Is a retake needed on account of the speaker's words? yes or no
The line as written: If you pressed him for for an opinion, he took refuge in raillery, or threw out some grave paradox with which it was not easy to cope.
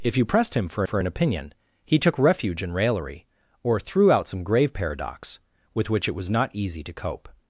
no